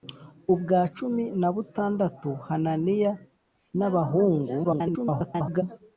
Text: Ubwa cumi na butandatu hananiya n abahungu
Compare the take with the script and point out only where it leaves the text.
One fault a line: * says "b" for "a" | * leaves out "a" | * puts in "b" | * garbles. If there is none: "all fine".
* garbles